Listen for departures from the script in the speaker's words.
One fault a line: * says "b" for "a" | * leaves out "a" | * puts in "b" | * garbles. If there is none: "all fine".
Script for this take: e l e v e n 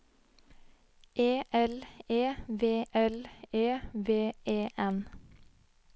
* puts in "l e v"